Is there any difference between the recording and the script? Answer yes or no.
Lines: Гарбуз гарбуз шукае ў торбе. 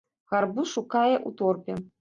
yes